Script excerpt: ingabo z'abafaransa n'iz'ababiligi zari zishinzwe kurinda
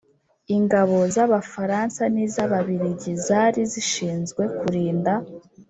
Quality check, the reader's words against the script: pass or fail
pass